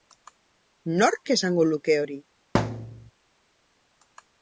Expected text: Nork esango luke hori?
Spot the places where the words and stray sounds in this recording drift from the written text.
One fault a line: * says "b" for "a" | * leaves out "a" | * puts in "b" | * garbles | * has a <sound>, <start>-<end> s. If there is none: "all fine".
* has a thud, 2.5-3.1 s